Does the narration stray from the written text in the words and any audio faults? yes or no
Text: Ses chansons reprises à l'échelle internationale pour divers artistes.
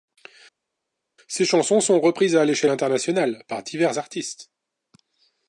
yes